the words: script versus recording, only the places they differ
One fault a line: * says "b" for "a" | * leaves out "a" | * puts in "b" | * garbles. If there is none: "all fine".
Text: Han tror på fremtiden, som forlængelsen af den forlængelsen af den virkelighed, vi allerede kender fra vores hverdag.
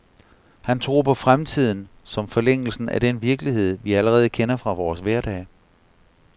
* leaves out "forlængelsen af den"